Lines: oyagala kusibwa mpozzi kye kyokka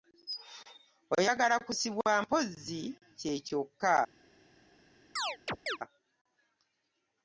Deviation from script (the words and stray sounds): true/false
true